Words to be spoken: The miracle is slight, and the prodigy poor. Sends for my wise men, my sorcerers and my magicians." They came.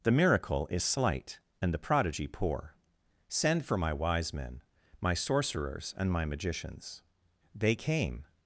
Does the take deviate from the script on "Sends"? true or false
true